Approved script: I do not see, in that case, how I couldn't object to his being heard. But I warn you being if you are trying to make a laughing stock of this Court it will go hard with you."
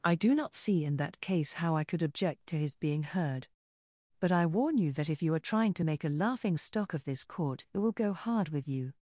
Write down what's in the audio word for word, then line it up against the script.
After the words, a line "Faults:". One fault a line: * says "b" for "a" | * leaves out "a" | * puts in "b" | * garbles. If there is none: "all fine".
I do not see, in that case, how I could object to his being heard. But I warn you that if you are trying to make a laughing stock of this Court it will go hard with you."
Faults:
* says "could" for "couldn't"
* says "that" for "being"